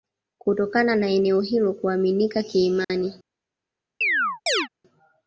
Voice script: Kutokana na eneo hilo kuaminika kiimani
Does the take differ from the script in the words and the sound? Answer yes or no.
yes